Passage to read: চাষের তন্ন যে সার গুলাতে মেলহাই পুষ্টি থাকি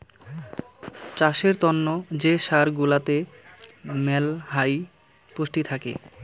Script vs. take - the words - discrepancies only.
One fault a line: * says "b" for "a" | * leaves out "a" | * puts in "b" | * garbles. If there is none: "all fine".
all fine